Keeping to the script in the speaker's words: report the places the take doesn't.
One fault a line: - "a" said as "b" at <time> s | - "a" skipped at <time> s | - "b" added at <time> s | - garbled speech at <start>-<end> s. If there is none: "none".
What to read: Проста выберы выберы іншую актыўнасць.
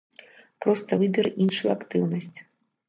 - "выберы" skipped at 1.3 s